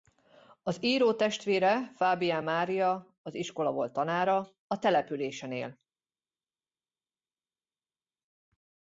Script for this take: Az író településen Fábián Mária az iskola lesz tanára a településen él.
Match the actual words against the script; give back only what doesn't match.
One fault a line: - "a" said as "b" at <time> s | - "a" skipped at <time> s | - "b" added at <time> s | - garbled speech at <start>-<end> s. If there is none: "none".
- "településen" said as "testvére" at 1.1 s
- "lesz" said as "volt" at 3.7 s